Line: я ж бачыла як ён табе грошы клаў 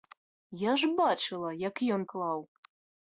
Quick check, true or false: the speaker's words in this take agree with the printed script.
false